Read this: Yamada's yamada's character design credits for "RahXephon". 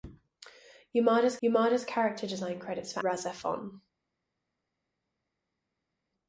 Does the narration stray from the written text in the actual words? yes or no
no